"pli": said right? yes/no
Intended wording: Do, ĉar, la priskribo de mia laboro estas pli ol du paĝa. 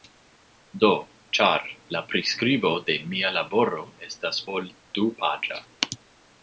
no